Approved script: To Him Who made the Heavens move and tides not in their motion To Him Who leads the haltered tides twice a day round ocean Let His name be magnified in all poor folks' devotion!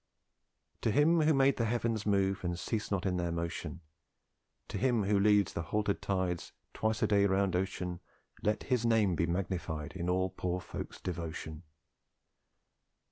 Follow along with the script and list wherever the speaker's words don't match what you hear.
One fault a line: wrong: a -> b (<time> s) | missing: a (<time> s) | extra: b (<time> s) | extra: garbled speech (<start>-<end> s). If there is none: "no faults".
wrong: tides -> cease (2.6 s)